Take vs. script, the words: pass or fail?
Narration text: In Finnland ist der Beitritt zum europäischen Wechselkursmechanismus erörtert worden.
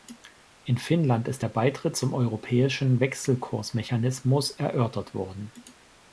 pass